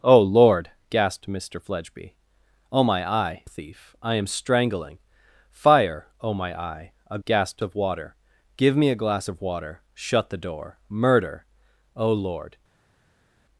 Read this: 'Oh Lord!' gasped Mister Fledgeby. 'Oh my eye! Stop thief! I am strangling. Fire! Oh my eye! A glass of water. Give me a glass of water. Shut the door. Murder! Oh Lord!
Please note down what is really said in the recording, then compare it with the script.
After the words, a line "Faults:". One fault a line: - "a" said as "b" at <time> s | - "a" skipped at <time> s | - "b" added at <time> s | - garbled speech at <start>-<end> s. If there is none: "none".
'Oh Lord!' gasped Mister Fledgeby. 'Oh my eye! Thief! I am strangling. Fire! Oh my eye! A gasped of water. Give me a glass of water. Shut the door. Murder! Oh Lord!
Faults:
- "Stop" skipped at 3.5 s
- "glass" said as "gasped" at 7.2 s